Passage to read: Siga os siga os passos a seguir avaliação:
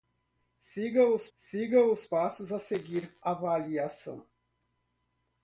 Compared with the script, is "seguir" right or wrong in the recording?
right